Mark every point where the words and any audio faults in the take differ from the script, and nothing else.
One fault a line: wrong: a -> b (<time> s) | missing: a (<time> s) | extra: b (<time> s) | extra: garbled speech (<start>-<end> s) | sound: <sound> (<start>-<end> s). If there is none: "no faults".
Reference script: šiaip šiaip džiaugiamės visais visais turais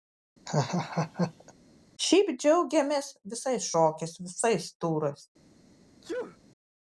sound: laugh (0.5-1.5 s)
missing: šiaip (2.3 s)
extra: šokiais (3.7 s)
sound: sneeze (6.0-6.4 s)